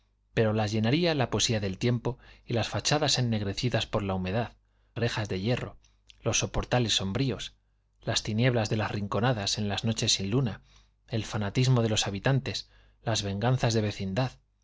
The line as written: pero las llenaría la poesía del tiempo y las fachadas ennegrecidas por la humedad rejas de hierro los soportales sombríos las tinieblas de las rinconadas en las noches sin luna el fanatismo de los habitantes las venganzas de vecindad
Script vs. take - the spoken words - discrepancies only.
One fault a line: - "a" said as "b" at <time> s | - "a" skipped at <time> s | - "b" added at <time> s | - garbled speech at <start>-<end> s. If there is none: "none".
none